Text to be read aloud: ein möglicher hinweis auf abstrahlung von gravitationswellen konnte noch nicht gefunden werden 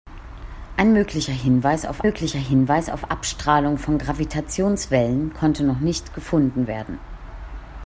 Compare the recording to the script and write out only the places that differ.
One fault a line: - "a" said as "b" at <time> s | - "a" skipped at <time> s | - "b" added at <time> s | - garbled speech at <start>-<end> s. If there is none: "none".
- "möglicher hinweis auf" added at 2.0 s